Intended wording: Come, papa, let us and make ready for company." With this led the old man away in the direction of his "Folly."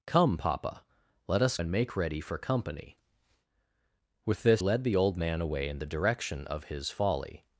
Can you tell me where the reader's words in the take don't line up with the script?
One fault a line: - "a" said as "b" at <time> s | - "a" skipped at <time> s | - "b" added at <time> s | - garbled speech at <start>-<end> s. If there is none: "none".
none